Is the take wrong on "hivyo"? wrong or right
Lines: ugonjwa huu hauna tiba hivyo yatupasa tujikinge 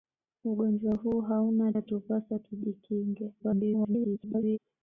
wrong